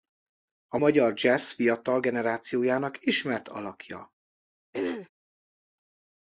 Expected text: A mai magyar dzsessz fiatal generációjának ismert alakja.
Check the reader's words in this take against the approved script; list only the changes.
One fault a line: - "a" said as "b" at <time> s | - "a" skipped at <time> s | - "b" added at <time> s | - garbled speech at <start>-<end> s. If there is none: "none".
- "mai" skipped at 0.8 s